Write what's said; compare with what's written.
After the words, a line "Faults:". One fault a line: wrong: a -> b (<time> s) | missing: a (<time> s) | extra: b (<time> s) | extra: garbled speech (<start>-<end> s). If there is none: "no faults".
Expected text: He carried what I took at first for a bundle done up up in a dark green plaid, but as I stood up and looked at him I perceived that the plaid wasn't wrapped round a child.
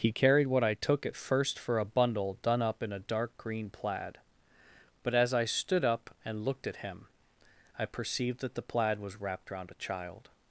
He carried what I took at first for a bundle done up in a dark green plaid, but as I stood up and looked at him I perceived that the plaid was wrapped round a child.
Faults:
missing: up (2.8 s)
wrong: wasn't -> was (9.0 s)